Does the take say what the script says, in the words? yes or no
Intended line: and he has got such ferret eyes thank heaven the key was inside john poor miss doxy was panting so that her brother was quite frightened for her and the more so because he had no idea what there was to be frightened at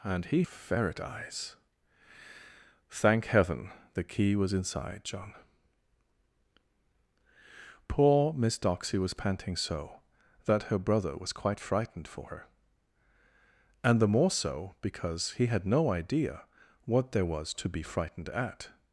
no